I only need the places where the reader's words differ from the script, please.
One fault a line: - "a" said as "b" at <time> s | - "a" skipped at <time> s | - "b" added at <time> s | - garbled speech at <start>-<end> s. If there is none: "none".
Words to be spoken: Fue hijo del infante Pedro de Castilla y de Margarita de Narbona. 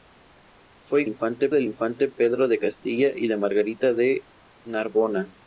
- "hijo" said as "infante" at 1.1 s